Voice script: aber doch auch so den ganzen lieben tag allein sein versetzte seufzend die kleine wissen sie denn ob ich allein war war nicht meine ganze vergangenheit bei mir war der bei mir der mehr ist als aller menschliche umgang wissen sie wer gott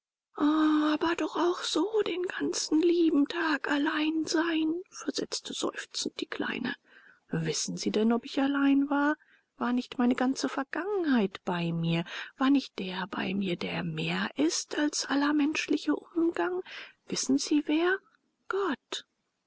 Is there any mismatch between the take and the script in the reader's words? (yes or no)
yes